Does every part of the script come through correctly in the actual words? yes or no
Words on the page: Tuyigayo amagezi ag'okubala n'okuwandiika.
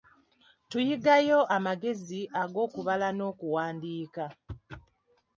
yes